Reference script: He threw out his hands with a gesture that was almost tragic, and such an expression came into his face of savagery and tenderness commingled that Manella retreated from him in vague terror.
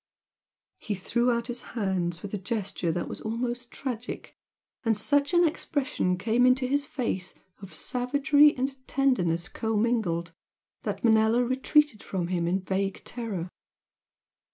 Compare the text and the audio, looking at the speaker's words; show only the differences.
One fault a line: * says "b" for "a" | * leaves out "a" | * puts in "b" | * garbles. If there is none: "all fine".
all fine